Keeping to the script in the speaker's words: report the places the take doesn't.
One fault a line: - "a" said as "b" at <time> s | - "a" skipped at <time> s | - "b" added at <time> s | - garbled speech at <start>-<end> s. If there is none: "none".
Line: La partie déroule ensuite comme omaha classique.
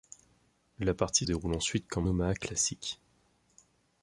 none